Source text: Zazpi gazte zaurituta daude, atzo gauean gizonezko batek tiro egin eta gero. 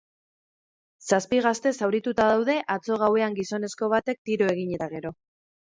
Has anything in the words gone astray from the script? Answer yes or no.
no